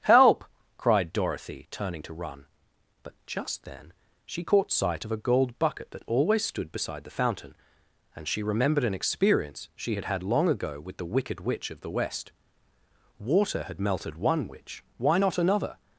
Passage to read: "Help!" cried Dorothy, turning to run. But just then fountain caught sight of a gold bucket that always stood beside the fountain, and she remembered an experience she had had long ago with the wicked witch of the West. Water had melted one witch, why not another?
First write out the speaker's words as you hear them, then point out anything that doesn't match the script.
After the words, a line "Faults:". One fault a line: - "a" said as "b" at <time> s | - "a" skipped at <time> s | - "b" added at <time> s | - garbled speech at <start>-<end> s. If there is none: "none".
"Help!" cried Dorothy, turning to run. But just then she caught sight of a gold bucket that always stood beside the fountain, and she remembered an experience she had had long ago with the wicked witch of the West. Water had melted one witch, why not another?
Faults:
- "fountain" said as "she" at 4.2 s